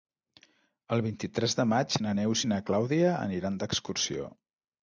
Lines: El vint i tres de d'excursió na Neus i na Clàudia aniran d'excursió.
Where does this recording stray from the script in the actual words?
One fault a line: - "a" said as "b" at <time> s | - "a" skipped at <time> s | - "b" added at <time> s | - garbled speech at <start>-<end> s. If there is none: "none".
- "d'excursió" said as "maig" at 1.8 s